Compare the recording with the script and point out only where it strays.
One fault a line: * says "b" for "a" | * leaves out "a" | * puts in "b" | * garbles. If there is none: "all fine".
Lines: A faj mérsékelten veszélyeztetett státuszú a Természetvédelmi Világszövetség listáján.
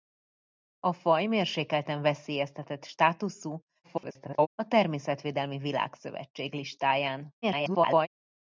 * garbles
* garbles